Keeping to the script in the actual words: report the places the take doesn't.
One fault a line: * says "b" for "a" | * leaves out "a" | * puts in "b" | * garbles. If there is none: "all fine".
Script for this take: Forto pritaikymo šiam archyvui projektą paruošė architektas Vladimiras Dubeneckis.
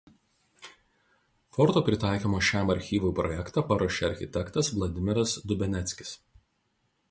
all fine